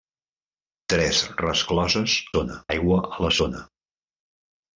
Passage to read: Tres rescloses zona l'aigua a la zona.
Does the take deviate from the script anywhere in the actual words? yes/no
no